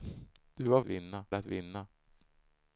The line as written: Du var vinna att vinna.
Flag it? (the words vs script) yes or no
no